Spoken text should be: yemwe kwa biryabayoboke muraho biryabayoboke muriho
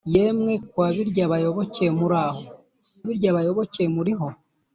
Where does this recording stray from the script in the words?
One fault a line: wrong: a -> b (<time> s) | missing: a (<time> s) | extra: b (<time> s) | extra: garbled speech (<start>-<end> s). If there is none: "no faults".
no faults